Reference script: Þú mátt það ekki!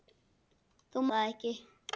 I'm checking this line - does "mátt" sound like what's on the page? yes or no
no